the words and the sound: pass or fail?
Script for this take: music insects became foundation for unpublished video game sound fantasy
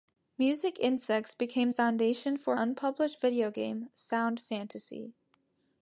pass